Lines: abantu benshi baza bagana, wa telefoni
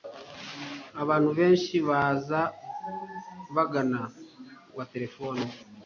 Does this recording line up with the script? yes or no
yes